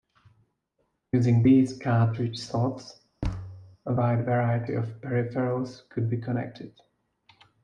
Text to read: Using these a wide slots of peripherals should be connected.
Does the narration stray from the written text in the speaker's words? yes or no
yes